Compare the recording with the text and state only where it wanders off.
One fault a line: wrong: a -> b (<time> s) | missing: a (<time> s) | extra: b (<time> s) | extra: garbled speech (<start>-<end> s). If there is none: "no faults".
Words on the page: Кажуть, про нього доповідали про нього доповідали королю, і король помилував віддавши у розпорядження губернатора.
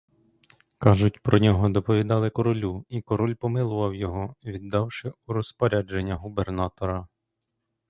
missing: про нього доповідали (2.3 s)
extra: його (4.0 s)